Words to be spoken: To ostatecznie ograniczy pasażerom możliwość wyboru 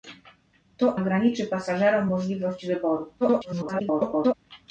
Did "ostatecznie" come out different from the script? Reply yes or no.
yes